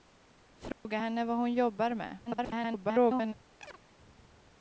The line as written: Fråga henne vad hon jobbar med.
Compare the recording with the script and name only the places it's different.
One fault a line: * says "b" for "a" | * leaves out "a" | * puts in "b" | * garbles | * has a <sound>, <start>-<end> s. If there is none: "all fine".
* has a dropout, 0.7-0.8 s
* garbles
* has a chirp, 3.6-3.8 s